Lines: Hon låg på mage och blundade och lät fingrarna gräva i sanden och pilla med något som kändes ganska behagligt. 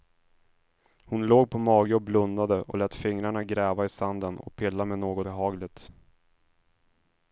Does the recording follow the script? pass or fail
fail